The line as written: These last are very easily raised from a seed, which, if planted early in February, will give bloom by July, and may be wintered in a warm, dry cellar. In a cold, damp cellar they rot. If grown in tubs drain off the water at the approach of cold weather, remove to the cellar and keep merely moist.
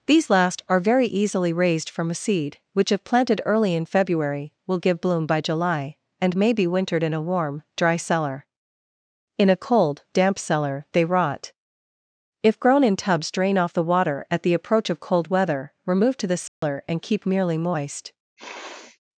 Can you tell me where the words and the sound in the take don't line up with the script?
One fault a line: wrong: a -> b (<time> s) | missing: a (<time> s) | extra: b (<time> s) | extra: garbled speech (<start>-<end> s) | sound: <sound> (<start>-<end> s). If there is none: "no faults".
sound: dropout (16.5-16.6 s)
sound: sniff (18.4-19.0 s)